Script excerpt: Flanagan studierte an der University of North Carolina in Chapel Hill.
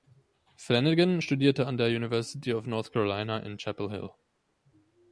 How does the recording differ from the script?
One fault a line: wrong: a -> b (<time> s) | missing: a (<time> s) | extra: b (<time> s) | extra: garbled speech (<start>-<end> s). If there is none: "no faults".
no faults